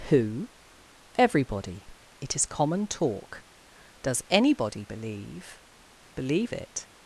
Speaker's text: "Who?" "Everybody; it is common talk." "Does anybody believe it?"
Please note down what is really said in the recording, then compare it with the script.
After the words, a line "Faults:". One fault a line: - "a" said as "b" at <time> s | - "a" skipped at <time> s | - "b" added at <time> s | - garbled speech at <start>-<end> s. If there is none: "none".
"Who?" "Everybody; it is common talk." "Does anybody believe believe it?"
Faults:
- "believe" added at 6.1 s